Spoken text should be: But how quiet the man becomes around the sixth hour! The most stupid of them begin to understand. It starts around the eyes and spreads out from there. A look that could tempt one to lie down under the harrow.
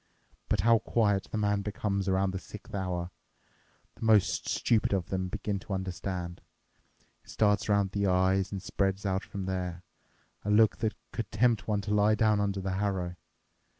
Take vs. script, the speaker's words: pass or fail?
pass